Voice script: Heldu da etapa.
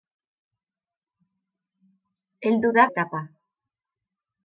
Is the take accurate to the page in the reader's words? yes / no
yes